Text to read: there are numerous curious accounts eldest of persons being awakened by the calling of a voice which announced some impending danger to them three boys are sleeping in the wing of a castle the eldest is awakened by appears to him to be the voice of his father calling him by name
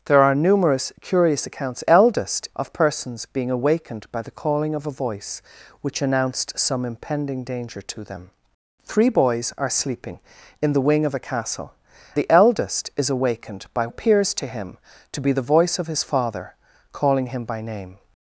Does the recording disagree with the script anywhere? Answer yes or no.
no